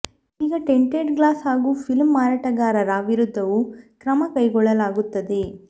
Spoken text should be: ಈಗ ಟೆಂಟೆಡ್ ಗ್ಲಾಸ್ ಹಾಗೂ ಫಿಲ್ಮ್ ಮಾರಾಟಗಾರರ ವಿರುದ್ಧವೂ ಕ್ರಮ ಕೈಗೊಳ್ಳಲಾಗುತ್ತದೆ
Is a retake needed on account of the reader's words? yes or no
no